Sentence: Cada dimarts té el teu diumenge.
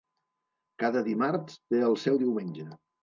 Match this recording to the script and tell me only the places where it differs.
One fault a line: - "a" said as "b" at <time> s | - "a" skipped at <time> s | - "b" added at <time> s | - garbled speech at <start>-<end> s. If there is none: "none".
- "teu" said as "seu" at 2.0 s